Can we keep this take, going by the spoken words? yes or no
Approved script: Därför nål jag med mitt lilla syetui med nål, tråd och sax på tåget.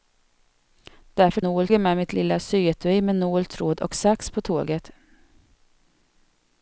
yes